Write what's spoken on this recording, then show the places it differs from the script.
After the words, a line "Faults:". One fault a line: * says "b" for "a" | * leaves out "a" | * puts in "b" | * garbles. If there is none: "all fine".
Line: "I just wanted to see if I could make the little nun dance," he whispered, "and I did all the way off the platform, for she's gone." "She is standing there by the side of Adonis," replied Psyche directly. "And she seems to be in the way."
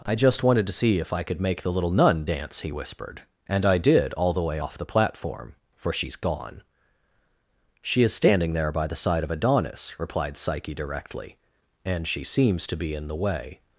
"I just wanted to see if I could make the little nun dance," he whispered, "and I did all the way off the platform, for she's gone." "She is standing there by the side of Adonis," replied Psyche directly. "And she seems to be in the way."
Faults:
all fine